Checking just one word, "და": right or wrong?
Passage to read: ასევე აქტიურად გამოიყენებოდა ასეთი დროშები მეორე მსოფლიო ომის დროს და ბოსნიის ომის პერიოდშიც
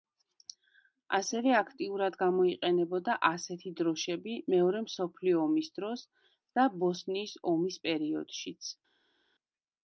right